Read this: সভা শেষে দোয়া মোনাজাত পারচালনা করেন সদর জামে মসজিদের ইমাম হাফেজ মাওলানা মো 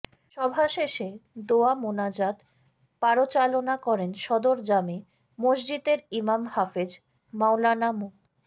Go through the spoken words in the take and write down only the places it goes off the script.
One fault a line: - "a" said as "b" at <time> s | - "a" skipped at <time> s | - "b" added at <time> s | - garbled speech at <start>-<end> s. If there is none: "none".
none